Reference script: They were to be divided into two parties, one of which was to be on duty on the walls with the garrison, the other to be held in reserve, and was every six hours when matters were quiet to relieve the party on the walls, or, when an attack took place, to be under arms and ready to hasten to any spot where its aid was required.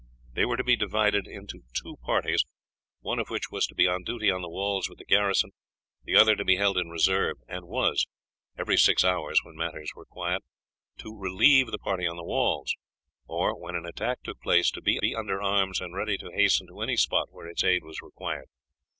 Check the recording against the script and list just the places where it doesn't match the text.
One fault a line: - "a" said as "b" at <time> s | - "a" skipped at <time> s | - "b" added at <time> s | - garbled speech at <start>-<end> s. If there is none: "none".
- "be" added at 15.0 s